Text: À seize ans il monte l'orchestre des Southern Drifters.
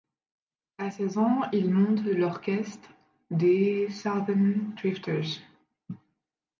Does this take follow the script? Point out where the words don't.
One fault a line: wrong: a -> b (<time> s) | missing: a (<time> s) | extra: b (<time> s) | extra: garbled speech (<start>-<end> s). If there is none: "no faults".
no faults